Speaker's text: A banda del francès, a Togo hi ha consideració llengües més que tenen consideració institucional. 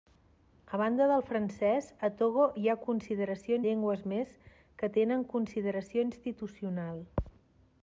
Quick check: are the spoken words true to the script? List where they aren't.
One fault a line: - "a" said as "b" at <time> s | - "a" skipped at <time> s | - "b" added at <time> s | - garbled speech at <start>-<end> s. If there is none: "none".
none